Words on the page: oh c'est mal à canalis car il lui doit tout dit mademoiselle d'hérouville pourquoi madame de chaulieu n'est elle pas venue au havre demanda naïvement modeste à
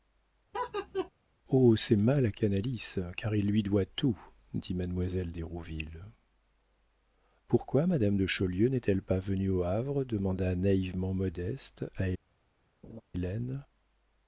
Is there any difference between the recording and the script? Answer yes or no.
no